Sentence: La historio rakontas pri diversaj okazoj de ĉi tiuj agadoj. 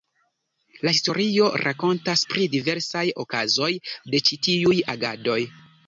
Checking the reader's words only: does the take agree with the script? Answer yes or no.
yes